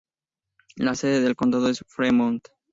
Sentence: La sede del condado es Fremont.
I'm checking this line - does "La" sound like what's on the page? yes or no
yes